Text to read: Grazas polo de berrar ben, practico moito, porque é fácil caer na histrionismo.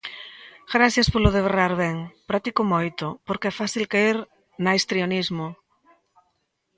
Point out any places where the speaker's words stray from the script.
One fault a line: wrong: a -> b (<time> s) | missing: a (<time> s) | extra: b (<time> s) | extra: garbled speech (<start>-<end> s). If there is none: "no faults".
no faults